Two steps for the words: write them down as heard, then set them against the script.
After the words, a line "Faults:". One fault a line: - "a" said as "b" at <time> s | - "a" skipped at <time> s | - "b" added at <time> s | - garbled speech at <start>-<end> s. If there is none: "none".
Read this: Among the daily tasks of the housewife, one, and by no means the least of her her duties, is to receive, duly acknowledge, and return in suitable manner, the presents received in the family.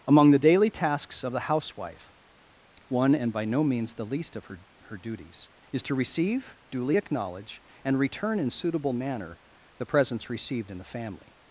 Among the daily tasks of the housewife, one, and by no means the least of her her duties, is to receive, duly acknowledge, and return in suitable manner, the presents received in the family.
Faults:
none